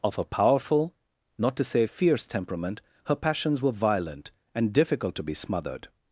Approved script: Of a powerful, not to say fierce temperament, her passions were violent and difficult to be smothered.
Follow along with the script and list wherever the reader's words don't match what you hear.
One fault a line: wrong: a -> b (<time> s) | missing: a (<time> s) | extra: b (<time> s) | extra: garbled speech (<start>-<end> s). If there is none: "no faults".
no faults